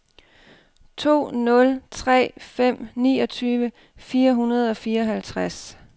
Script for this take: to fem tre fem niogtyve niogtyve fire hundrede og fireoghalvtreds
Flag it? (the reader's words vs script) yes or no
yes